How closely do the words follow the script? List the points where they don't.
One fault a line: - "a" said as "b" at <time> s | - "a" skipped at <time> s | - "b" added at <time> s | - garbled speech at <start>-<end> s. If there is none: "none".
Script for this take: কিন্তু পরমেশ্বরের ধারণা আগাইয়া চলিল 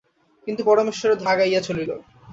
- "ধারণা" skipped at 1.2 s